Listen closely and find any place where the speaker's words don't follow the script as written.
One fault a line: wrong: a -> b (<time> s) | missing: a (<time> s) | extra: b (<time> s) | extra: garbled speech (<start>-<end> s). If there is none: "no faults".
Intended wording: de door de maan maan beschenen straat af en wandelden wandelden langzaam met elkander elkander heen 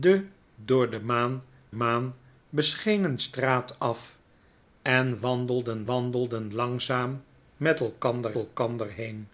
no faults